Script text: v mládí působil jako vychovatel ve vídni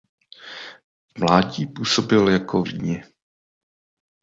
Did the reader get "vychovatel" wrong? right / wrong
wrong